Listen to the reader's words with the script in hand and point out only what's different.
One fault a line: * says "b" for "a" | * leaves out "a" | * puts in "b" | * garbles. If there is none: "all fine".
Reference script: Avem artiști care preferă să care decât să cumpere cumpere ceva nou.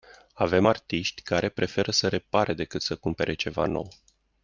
* says "repare" for "care"
* leaves out "cumpere"